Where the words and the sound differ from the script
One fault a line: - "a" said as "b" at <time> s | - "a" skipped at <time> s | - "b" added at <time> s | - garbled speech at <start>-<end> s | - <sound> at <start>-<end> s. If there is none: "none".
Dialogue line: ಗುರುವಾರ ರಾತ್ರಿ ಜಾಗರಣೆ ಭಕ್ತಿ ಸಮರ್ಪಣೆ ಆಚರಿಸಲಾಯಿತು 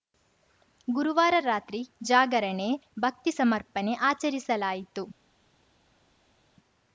none